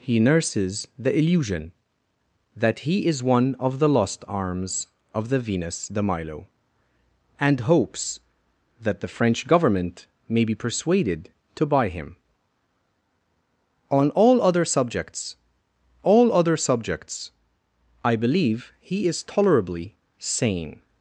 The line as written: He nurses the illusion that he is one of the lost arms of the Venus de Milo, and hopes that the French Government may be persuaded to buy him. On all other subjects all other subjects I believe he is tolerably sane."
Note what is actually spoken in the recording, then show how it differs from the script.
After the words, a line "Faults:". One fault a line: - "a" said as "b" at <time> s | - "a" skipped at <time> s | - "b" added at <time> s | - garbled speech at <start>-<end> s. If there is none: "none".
He nurses the illusion that he is one of the lost arms of the Venus de Milo, and hopes that the French Government may be persuaded to buy him. On all other subjects all other subjects I believe he is tolerably sane."
Faults:
none